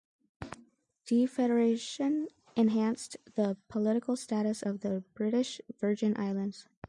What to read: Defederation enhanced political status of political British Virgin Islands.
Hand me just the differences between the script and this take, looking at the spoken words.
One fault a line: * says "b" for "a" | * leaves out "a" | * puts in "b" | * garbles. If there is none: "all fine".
* puts in "the"
* says "the" for "political"